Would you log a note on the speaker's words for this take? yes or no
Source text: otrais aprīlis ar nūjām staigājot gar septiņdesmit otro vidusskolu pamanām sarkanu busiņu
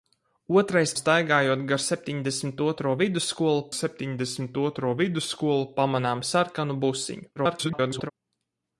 yes